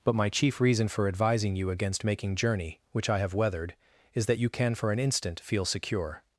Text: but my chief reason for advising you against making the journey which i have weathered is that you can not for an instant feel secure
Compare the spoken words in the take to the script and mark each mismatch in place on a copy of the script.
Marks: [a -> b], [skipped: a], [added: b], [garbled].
but my chief reason for advising you against making [skipped: the] journey which i have weathered is that you can [skipped: not] for an instant feel secure